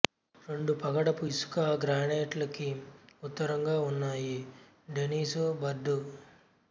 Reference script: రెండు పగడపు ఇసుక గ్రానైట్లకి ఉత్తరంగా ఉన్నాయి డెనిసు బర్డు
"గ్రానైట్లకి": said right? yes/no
yes